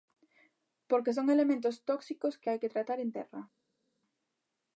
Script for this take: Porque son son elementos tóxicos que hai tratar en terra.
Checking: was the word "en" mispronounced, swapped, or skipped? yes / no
no